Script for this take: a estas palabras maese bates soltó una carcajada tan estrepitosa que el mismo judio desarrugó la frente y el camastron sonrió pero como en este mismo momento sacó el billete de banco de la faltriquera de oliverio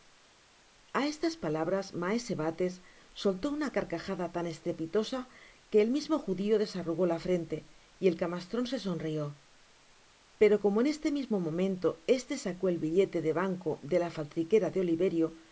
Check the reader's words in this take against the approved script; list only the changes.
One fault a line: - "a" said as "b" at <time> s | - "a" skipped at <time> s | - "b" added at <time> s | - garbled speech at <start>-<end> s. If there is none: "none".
- "se" added at 8.7 s
- "este" added at 12.1 s